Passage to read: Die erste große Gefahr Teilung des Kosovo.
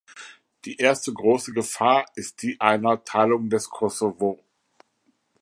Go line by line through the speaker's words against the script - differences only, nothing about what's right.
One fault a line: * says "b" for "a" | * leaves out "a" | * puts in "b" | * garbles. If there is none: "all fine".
* puts in "ist die einer"